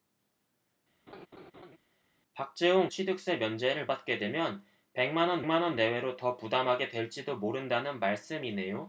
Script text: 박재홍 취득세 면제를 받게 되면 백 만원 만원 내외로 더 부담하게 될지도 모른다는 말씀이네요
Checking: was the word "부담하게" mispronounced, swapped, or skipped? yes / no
no